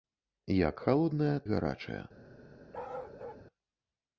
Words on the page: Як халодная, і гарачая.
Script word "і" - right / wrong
right